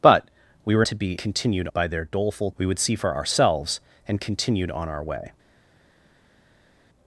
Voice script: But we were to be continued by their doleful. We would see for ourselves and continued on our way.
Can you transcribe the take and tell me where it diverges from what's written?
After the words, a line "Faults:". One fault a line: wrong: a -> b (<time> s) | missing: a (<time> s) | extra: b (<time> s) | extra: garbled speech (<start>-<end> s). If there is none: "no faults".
But we were to be continued by their doleful. We would see for ourselves and continued on our way.
Faults:
no faults